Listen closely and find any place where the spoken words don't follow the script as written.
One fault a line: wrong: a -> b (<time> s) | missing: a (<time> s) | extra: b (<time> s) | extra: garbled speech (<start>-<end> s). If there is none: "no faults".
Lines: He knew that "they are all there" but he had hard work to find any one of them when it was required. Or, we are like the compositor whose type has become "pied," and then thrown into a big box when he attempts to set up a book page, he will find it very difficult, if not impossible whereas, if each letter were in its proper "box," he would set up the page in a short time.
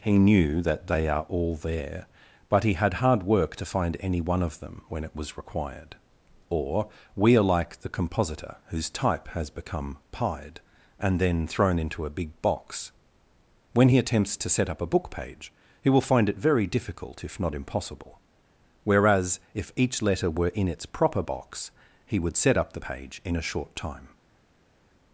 no faults